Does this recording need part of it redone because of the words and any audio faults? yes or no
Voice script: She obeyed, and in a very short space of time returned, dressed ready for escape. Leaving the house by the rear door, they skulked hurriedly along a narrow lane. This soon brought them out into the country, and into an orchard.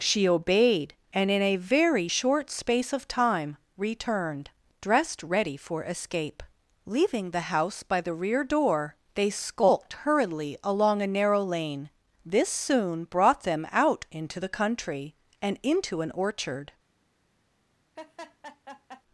yes